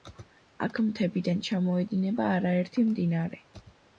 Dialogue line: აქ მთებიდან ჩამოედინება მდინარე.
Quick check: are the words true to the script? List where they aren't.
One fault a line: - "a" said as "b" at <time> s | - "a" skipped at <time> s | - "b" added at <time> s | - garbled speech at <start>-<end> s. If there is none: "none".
- "არაერთი" added at 2.4 s